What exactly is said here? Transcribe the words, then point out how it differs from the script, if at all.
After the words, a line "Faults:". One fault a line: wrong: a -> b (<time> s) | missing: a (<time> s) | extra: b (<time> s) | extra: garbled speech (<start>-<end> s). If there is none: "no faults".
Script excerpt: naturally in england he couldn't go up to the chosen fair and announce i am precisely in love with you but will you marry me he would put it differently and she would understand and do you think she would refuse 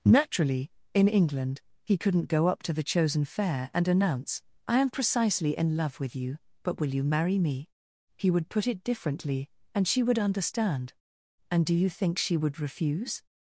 naturally in england he couldn't go up to the chosen fair and announce i am precisely in love with you but will you marry me he would put it differently and she would understand and do you think she would refuse
Faults:
no faults